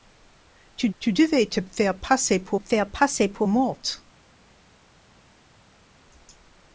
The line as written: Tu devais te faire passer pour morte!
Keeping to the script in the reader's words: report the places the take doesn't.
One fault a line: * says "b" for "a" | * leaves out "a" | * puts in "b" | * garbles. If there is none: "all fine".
* puts in "tu"
* puts in "faire passer pour"